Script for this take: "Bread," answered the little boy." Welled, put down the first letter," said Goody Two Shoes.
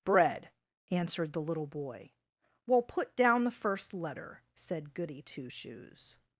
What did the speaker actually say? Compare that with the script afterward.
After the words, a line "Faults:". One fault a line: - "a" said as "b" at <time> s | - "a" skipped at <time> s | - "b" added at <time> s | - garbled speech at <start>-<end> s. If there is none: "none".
"Bread," answered the little boy." Well, put down the first letter," said Goody Two Shoes.
Faults:
- "Welled" said as "Well" at 2.7 s